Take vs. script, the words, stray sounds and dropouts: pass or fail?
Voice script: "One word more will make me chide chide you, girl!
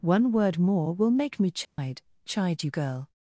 fail